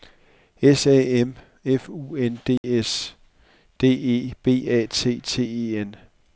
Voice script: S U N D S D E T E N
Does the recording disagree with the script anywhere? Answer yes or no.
yes